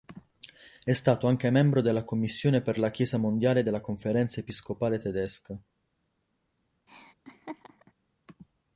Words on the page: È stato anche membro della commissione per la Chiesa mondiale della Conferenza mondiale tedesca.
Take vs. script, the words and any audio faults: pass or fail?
fail